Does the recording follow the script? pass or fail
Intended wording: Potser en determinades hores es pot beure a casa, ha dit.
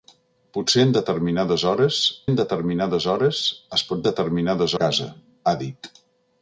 fail